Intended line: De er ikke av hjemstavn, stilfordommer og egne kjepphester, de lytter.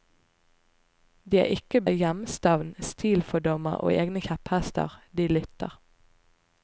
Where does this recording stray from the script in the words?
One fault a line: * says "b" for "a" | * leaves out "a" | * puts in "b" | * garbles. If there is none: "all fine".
all fine